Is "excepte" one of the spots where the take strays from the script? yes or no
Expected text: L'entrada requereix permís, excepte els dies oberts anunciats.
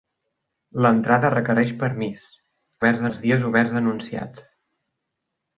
yes